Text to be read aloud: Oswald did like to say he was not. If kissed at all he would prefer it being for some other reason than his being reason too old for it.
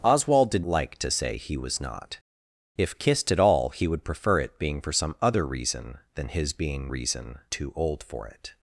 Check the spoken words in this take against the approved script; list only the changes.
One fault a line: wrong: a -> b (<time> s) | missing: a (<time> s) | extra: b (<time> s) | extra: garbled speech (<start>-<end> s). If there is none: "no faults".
no faults